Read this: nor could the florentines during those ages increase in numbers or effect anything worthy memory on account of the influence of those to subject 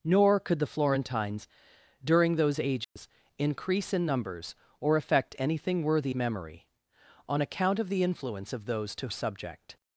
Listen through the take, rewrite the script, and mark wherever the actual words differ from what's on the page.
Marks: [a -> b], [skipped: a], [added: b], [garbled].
nor could the florentines during those ages increase in numbers or effect anything worthy memory on account of the influence of those to subject